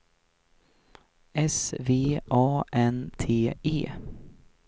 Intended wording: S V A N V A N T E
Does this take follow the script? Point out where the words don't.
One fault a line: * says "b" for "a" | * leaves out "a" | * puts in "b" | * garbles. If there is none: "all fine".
* leaves out "V A N"